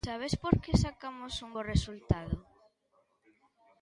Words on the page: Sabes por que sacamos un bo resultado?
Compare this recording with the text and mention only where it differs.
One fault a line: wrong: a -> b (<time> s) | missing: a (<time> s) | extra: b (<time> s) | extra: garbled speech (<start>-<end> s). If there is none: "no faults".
no faults